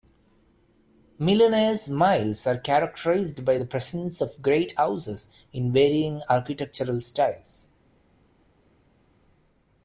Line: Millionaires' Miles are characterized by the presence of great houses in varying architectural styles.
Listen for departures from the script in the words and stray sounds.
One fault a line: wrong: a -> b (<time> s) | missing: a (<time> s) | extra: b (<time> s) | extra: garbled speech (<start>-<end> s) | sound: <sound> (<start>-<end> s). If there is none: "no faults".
no faults